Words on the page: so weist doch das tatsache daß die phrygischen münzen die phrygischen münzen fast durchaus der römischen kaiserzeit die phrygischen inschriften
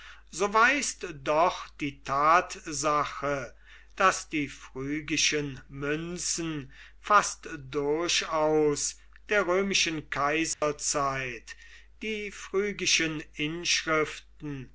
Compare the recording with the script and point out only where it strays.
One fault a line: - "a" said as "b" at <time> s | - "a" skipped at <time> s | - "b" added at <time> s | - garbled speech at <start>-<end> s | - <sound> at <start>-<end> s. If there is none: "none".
- "das" said as "die" at 1.8 s
- "die phrygischen münzen" skipped at 6.7 s
- dropout at 10.5-10.6 s